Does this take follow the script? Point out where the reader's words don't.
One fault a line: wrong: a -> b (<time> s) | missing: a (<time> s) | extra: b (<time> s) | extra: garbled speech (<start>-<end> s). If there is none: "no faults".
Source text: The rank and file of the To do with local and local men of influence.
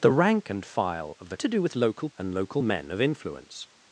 no faults